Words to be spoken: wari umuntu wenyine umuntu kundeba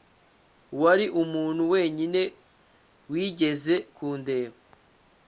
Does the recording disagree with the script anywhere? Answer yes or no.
yes